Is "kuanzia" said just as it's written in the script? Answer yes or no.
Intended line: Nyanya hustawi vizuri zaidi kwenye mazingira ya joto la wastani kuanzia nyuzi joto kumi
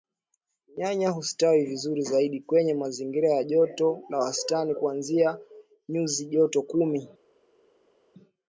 yes